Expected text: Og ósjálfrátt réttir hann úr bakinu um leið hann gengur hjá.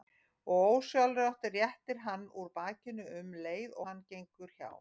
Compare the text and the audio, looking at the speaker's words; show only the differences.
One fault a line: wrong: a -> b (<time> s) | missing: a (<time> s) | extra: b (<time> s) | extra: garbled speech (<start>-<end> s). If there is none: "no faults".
no faults